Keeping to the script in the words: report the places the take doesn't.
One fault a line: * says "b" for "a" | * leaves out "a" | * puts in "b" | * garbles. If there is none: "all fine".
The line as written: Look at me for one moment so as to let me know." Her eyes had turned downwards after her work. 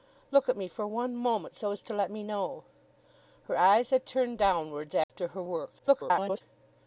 * garbles